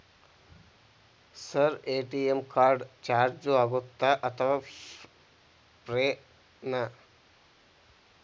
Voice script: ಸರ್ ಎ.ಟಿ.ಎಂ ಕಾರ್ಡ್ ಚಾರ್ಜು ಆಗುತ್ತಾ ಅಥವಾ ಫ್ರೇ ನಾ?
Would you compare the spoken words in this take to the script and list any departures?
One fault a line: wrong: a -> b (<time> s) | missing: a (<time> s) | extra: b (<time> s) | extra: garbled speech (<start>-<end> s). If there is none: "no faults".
no faults